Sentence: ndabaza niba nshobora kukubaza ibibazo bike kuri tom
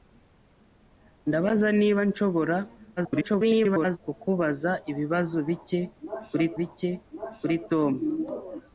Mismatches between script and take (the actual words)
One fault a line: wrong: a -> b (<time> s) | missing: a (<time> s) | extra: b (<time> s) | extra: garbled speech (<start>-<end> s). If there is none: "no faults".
extra: garbled speech (3.0-4.0 s)
extra: bike kuri (6.6 s)